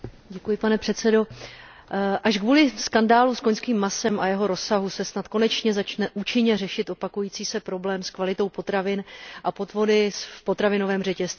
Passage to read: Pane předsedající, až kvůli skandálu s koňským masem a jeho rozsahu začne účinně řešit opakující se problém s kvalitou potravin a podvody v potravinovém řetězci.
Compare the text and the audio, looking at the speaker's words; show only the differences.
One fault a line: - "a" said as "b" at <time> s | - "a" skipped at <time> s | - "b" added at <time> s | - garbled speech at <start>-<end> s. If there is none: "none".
- "se snad konečně" added at 4.9 s